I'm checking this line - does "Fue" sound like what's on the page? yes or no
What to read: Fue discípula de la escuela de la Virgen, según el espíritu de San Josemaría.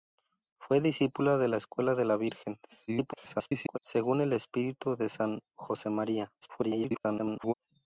yes